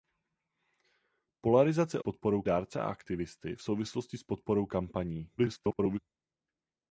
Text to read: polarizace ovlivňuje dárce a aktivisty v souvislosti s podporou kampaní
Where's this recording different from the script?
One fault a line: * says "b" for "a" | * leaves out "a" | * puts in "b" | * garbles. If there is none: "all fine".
* says "podporou" for "ovlivňuje"
* garbles